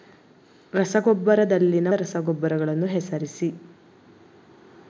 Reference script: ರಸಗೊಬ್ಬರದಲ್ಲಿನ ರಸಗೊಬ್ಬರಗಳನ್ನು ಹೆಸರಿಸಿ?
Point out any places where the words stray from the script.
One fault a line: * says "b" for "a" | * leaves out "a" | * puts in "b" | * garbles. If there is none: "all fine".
all fine